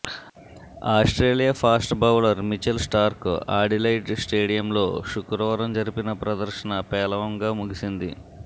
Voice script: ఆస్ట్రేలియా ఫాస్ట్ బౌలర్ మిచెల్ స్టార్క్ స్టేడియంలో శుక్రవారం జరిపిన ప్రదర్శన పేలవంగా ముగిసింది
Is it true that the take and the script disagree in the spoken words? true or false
true